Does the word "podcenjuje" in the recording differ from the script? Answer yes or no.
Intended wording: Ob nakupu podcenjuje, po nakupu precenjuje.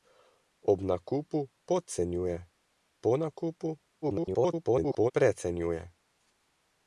no